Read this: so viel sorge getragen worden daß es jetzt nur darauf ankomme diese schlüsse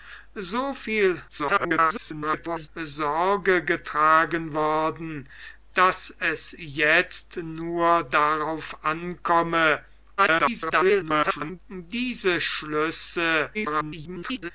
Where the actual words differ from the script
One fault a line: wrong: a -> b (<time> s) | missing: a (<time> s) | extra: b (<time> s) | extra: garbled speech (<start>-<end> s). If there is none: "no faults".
extra: garbled speech (1.3-2.7 s)
extra: garbled speech (10.2-11.6 s)
extra: garbled speech (13.5-14.5 s)